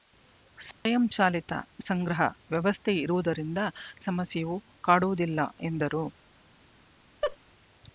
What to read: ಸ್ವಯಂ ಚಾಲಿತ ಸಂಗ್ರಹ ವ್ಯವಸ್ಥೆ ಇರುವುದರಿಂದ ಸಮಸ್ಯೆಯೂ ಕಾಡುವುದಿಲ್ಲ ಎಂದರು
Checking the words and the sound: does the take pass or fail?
fail